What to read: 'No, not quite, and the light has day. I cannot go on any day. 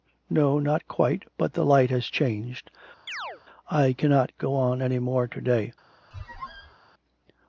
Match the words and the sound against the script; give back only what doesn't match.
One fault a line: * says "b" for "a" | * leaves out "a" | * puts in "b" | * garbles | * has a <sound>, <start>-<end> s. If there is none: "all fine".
* says "but" for "and"
* says "changed" for "day"
* has a chirp, 3.1-3.4 s
* puts in "more to"
* has a squeak, 6.1-6.7 s